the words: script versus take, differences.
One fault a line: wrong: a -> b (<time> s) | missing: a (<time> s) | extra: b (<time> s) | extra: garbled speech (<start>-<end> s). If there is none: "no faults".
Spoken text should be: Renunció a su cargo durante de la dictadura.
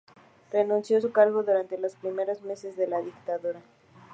extra: los primeros meses (1.8 s)